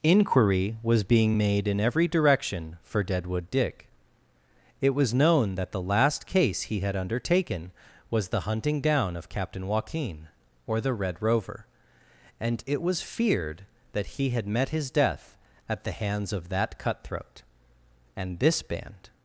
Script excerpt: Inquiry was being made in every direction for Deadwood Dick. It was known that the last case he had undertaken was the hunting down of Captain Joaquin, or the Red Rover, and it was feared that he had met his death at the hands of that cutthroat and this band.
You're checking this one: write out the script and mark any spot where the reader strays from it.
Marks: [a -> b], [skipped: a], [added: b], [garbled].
Inquiry was being made in every direction for Deadwood Dick. It was known that the last case he had undertaken was the hunting down of Captain Joaquin, or the Red Rover, and it was feared that he had met his death at the hands of that cutthroat and this band.